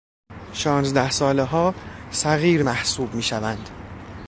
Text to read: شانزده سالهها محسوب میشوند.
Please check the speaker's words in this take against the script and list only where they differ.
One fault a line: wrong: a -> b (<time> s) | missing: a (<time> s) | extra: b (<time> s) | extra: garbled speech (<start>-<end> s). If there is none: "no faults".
extra: صغیر (2.1 s)